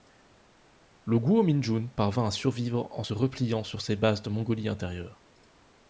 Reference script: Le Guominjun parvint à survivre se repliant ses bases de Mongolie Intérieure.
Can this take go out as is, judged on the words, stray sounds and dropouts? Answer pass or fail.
fail